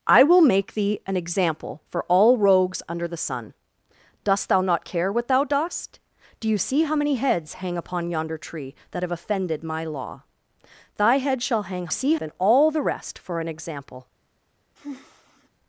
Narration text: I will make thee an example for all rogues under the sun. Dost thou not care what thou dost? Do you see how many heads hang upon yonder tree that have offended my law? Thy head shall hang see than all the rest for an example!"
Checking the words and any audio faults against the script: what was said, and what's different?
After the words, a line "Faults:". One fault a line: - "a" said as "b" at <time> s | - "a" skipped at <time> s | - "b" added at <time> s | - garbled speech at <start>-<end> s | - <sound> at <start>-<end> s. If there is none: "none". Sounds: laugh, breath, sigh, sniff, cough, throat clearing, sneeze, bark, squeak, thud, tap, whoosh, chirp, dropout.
I will make thee an example for all rogues under the sun. Dost thou not care what thou dost? Do you see how many heads hang upon yonder tree that have offended my law? Thy head shall hang see than all the rest for an example!"
Faults:
- sigh at 14.8-15.5 s